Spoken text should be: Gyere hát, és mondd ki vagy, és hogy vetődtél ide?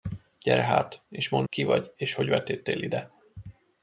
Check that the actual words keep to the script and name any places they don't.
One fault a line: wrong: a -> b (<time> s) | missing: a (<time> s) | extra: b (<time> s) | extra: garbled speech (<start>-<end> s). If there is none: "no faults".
no faults